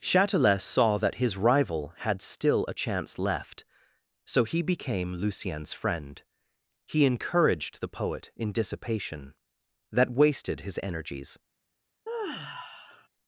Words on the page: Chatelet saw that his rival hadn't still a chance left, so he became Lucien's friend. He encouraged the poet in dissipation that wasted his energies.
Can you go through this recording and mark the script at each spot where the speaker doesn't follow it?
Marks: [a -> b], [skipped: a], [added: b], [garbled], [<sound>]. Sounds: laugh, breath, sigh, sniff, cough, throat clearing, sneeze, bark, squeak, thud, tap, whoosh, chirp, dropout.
Chatelet saw that his rival [hadn't -> had] still a chance left, so he became Lucien's friend. He encouraged the poet in dissipation that wasted his energies. [sigh]